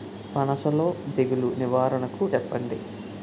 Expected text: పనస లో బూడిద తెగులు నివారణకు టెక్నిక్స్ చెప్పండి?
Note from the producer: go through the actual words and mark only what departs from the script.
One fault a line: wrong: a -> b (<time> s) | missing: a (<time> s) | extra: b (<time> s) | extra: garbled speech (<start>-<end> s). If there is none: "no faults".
missing: బూడిద (0.9 s)
missing: టెక్నిక్స్ (2.3 s)